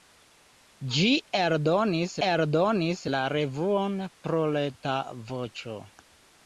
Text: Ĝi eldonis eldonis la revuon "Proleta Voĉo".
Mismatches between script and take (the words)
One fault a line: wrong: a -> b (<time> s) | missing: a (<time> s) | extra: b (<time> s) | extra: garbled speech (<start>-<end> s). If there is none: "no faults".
no faults